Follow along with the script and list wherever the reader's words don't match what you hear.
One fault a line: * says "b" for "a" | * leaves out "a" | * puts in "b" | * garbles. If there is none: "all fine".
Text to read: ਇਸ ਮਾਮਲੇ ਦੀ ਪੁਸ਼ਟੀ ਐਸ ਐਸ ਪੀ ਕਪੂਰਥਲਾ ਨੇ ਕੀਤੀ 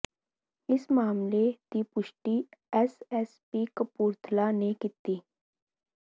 all fine